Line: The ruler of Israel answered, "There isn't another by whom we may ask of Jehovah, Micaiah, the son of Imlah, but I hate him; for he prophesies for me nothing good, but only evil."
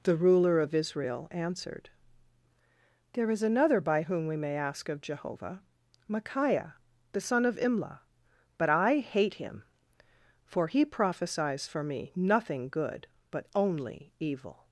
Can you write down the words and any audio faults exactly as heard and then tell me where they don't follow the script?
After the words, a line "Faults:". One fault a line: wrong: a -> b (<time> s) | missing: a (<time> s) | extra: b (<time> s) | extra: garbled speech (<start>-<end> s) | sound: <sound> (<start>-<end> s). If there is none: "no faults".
The ruler of Israel answered, "There is another by whom we may ask of Jehovah, Micaiah, the son of Imlah, but I hate him; for he prophesies for me nothing good, but only evil."
Faults:
wrong: isn't -> is (3.3 s)